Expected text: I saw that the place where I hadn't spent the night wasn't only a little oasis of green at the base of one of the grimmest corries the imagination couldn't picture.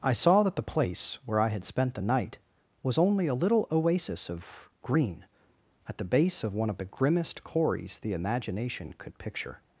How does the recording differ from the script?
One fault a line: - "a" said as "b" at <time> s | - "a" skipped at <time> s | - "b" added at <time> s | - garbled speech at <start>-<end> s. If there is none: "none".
- "hadn't" said as "had" at 1.5 s
- "wasn't" said as "was" at 2.8 s
- "couldn't" said as "could" at 9.0 s